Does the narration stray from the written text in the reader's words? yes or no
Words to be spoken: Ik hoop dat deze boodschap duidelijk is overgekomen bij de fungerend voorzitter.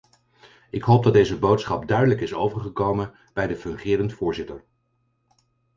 no